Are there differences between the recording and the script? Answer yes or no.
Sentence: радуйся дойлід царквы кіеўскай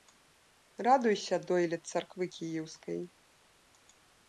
no